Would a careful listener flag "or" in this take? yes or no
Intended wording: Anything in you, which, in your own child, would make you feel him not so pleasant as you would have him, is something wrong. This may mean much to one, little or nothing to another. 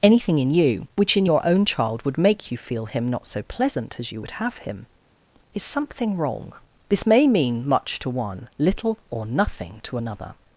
no